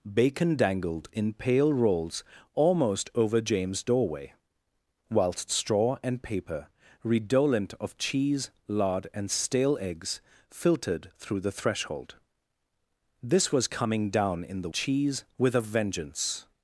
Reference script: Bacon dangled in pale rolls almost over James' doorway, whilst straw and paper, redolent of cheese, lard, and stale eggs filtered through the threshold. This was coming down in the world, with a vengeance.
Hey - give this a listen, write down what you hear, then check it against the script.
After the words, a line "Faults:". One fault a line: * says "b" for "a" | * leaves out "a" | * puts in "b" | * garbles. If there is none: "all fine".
Bacon dangled in pale rolls almost over James' doorway, whilst straw and paper, redolent of cheese, lard, and stale eggs filtered through the threshold. This was coming down in the cheese, with a vengeance.
Faults:
* says "cheese" for "world"